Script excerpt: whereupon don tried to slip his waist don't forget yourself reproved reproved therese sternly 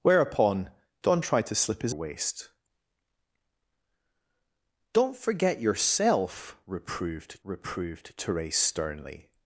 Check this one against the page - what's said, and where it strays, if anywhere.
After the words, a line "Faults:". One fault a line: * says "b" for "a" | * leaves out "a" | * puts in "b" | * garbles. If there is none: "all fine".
whereupon don tried to slip his waist don't forget yourself reproved reproved therese sternly
Faults:
all fine